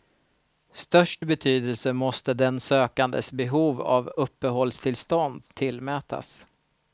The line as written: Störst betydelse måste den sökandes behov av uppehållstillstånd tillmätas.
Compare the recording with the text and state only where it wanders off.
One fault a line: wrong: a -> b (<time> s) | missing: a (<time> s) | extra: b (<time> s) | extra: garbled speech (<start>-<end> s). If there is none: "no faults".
no faults